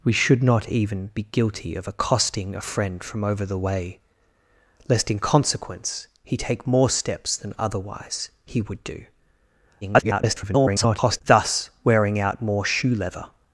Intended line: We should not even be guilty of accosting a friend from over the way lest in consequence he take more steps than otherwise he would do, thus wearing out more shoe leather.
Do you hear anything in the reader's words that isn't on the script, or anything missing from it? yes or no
yes